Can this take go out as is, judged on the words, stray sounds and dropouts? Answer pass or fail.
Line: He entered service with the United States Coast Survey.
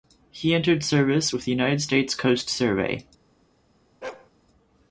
fail